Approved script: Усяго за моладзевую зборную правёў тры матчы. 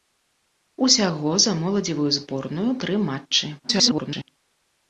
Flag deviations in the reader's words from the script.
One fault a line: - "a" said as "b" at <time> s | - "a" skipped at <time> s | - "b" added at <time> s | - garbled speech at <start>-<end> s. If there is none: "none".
- "правёў" skipped at 2.7 s
- garbled speech at 3.6-4.3 s